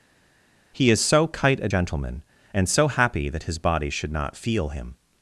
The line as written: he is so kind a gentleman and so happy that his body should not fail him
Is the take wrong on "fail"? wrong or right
wrong